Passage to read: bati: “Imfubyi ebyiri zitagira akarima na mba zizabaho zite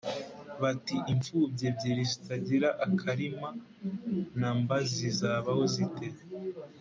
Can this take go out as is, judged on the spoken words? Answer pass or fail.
pass